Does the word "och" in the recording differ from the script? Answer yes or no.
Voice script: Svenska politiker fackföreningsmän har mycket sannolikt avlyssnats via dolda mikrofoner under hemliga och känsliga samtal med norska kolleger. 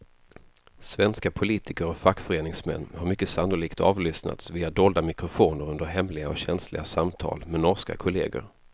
no